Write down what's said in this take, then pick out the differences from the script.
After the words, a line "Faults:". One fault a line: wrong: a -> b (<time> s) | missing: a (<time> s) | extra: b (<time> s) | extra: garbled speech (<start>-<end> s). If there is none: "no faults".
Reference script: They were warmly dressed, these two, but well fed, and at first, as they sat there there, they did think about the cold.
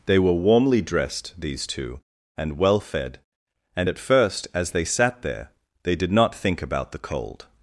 They were warmly dressed, these two, and well fed, and at first, as they sat there, they did not think about the cold.
Faults:
wrong: but -> and (2.4 s)
missing: there (5.5 s)
extra: not (6.1 s)